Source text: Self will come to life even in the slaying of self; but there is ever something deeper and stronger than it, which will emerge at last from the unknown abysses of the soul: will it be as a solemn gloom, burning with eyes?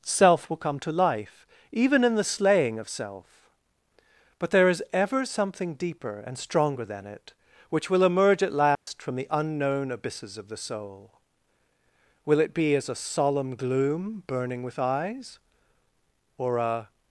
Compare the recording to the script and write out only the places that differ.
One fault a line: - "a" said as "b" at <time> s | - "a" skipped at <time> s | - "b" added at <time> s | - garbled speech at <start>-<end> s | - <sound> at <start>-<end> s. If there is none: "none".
- dropout at 8.7-8.9 s
- "or a" added at 16.4 s